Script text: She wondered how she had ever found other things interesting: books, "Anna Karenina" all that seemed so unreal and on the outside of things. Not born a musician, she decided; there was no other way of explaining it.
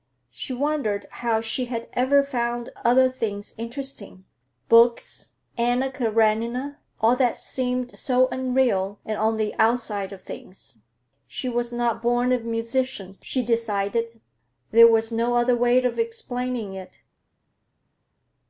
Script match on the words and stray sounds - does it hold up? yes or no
no